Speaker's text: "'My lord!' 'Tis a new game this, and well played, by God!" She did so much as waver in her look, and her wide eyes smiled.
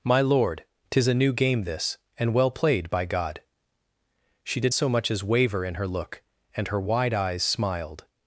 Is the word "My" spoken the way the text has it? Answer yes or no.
yes